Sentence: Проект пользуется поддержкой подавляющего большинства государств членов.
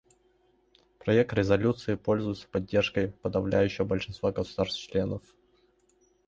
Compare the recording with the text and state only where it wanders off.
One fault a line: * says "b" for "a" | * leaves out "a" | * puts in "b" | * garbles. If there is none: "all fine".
* puts in "резолюции"